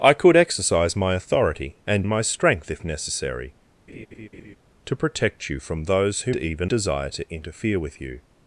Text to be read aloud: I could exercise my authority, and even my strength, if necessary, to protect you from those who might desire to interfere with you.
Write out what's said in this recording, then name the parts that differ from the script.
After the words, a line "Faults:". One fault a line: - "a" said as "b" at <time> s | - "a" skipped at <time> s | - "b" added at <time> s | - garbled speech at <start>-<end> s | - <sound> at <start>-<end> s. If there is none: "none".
I could exercise my authority, and my strength, if necessary, to protect you from those who even desire to interfere with you.
Faults:
- "even" skipped at 2.1 s
- laugh at 3.9-4.6 s
- "might" said as "even" at 6.3 s